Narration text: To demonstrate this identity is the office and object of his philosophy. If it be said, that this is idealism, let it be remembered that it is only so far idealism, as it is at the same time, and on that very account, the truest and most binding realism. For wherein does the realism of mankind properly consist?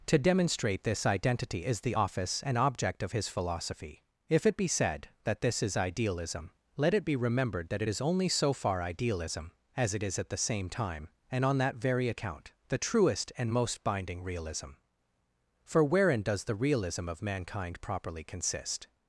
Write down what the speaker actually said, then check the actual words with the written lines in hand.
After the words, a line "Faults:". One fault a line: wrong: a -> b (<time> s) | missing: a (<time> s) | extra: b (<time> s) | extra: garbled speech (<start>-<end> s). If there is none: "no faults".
To demonstrate this identity is the office and object of his philosophy. If it be said, that this is idealism, let it be remembered that it is only so far idealism, as it is at the same time, and on that very account, the truest and most binding realism. For wherein does the realism of mankind properly consist?
Faults:
no faults